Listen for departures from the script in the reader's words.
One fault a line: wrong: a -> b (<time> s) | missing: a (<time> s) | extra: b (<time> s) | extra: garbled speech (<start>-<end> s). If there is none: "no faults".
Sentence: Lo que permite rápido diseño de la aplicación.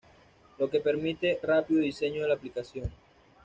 no faults